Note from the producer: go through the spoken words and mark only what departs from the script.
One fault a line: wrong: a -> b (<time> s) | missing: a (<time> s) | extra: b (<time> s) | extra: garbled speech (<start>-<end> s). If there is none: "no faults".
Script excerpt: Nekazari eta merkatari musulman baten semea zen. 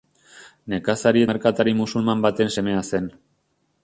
missing: eta (1.2 s)